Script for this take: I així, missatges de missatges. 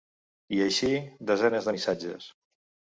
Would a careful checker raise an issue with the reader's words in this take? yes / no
yes